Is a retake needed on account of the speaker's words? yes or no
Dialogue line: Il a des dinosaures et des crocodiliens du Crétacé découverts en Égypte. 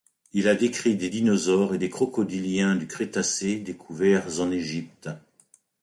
yes